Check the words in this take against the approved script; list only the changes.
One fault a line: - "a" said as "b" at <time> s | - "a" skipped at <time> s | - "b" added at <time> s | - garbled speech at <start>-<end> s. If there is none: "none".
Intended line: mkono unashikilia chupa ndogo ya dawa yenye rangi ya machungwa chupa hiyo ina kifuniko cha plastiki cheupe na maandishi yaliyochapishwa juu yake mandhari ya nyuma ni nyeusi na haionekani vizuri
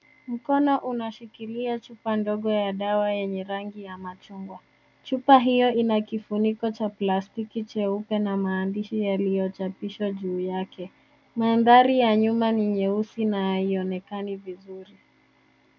none